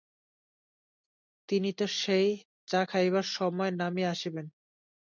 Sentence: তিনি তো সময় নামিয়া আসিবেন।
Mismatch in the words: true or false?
true